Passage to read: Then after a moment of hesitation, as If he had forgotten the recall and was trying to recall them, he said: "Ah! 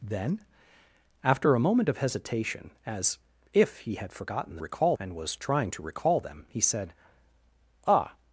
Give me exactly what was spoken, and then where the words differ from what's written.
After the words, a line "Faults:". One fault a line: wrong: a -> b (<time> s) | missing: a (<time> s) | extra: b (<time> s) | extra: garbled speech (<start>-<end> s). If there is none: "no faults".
Then after a moment of hesitation, as If he had forgotten the recall and was trying to recall them, he said: "Ah!
Faults:
no faults